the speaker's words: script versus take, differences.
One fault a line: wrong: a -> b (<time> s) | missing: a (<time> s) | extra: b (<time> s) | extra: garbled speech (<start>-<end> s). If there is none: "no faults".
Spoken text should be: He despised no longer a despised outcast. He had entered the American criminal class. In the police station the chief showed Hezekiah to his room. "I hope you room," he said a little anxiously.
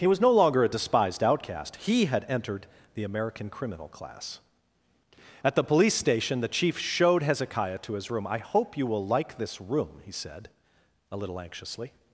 wrong: despised -> was (0.1 s)
wrong: In -> At (5.4 s)
extra: will like this (8.9 s)